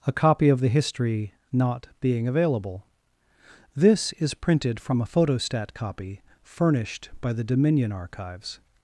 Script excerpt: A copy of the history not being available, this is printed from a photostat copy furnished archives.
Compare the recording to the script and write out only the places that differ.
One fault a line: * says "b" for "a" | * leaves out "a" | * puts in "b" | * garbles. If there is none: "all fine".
* puts in "by the Dominion"